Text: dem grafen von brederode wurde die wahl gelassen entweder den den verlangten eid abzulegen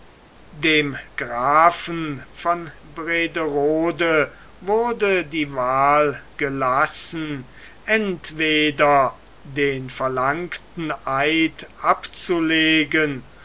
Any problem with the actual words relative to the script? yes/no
yes